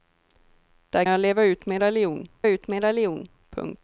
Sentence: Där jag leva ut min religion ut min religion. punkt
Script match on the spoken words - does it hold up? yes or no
yes